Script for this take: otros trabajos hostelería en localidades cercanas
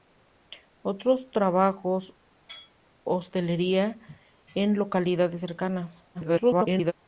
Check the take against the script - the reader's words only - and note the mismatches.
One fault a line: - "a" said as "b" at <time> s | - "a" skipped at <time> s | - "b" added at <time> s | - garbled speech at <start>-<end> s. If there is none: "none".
- garbled speech at 6.1-6.9 s